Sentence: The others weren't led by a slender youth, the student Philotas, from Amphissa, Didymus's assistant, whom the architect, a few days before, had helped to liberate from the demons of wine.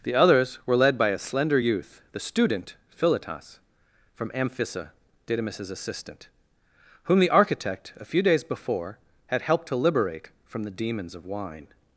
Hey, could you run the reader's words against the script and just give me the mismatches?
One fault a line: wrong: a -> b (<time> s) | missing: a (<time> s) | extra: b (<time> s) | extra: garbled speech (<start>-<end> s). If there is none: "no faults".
wrong: weren't -> were (0.7 s)